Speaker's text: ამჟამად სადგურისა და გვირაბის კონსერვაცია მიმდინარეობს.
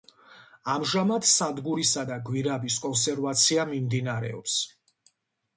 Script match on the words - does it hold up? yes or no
yes